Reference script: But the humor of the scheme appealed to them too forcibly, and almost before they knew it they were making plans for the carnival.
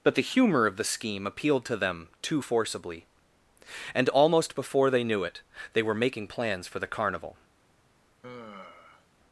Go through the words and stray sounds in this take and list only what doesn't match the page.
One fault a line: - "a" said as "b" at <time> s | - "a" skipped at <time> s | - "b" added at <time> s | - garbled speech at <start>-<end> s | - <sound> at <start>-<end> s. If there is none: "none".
- sigh at 8.2-9.1 s